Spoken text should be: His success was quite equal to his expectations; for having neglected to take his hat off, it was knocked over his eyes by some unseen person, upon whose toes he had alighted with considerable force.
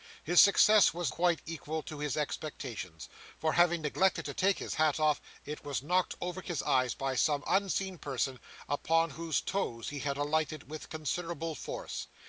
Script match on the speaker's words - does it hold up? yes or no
yes